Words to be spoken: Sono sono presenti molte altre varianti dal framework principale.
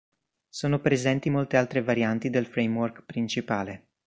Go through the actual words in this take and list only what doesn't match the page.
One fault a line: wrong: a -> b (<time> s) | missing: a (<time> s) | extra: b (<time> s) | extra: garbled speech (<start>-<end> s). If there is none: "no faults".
missing: sono (0.8 s)
wrong: dal -> del (2.3 s)